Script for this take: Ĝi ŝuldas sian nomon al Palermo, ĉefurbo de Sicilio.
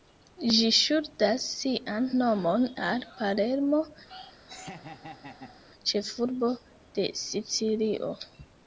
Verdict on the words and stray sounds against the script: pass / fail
fail